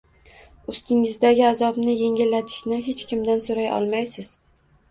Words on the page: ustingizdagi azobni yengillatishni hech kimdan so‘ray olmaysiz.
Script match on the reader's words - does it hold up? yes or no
yes